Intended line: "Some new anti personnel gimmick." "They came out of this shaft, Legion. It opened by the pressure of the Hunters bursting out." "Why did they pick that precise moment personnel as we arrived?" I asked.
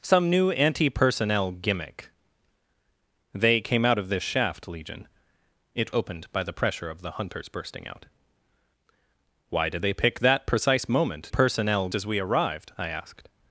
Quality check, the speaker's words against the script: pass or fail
pass